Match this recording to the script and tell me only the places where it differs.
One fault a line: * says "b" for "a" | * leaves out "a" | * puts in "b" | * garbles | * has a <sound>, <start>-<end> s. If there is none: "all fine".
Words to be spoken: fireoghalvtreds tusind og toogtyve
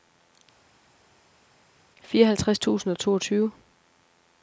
all fine